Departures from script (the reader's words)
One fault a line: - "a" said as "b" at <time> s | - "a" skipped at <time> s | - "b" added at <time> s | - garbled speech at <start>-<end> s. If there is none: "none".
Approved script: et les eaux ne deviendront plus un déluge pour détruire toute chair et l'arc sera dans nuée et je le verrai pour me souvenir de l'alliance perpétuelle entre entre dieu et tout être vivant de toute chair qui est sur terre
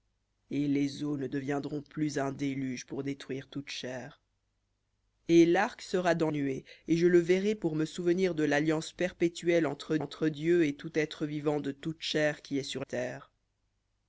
none